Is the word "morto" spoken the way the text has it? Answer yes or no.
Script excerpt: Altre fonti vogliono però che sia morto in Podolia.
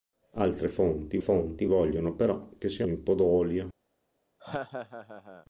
no